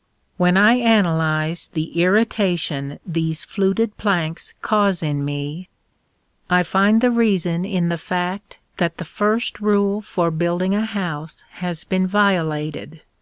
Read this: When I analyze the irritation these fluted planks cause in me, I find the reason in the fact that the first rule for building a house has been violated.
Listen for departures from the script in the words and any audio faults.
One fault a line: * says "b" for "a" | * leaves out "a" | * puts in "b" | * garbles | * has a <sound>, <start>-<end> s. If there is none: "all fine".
all fine